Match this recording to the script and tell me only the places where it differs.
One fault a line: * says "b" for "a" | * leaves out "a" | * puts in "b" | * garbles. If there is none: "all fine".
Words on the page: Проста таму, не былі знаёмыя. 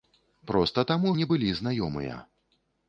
all fine